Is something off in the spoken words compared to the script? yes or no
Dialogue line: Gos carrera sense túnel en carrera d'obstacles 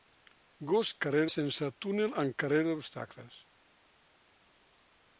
no